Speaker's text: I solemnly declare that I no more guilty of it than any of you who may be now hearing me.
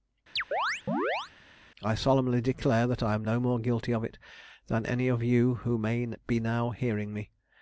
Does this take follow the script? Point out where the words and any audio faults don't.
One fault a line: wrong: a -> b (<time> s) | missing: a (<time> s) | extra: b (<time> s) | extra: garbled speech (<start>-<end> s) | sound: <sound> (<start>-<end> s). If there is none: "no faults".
sound: chirp (0.4-1.3 s)
extra: am (3.1 s)